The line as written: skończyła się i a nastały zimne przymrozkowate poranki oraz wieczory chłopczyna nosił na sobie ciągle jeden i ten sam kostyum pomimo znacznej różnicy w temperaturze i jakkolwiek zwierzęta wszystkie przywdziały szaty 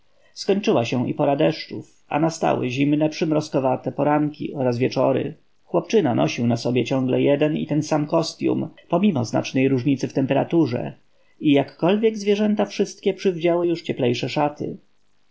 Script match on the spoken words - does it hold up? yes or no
no